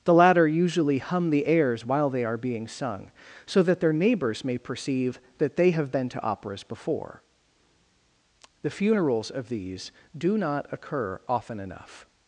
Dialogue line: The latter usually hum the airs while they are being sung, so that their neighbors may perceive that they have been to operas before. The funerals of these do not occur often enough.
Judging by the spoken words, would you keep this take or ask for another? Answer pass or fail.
pass